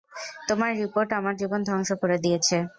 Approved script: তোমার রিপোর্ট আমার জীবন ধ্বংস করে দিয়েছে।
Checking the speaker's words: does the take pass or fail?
pass